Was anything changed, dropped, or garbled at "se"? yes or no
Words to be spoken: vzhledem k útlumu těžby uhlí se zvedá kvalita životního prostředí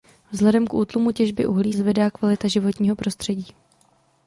yes